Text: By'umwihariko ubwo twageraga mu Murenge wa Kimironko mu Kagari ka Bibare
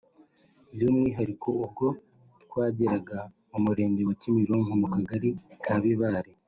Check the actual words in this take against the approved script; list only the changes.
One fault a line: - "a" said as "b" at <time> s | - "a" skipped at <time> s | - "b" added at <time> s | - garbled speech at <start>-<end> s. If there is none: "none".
none